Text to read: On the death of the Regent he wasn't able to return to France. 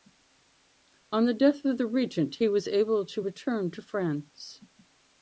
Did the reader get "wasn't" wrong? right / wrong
wrong